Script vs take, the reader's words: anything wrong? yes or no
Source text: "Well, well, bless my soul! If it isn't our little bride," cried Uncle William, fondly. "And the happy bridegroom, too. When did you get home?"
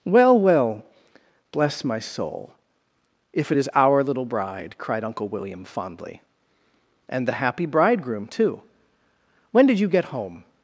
yes